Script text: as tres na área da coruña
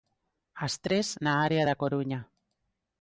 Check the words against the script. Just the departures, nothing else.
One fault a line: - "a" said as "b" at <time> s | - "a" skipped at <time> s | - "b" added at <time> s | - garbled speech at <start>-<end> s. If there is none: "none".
none